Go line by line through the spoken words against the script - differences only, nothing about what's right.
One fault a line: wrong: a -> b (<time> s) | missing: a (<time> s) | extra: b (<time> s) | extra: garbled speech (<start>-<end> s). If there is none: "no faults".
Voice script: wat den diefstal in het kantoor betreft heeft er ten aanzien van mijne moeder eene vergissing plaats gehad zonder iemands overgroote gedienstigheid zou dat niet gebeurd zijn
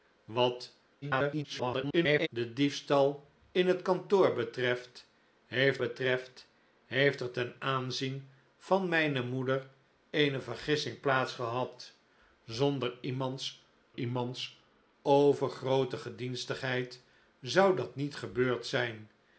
extra: garbled speech (1.0-2.3 s)
extra: betreft heeft (5.8 s)
extra: iemands (13.9 s)